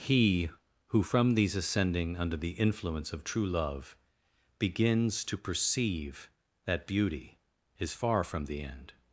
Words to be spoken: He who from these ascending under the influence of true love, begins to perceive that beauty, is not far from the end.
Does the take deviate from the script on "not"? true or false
true